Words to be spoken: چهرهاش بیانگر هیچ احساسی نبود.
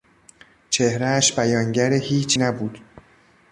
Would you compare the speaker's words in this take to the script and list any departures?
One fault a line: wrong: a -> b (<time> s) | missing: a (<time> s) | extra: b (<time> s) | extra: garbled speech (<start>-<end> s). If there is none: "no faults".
missing: احساسی (2.4 s)